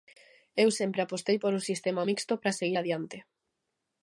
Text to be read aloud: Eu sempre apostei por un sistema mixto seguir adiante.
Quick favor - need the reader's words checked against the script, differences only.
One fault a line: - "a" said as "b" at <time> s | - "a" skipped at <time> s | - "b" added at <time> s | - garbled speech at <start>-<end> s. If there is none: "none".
- "para" added at 2.4 s